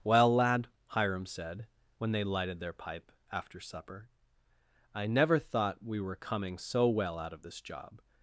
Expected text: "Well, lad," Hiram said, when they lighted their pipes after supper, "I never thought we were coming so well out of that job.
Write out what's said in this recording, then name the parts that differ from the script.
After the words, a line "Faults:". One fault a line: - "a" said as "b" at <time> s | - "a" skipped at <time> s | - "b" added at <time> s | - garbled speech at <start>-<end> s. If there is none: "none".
"Well, lad," Hiram said, when they lighted their pipe after supper, "I never thought we were coming so well out of this job.
Faults:
- "pipes" said as "pipe" at 2.7 s
- "that" said as "this" at 7.4 s